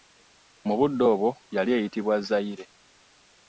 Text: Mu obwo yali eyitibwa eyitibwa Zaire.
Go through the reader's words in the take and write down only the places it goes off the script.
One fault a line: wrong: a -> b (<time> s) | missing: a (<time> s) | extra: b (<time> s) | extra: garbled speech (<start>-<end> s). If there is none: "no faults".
extra: budde (0.8 s)
missing: eyitibwa (2.2 s)